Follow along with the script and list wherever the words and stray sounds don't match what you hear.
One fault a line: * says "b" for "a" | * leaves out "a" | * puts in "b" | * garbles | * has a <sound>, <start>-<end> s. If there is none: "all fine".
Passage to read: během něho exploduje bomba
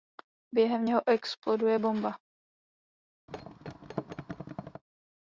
* has a thud, 3.3-4.8 s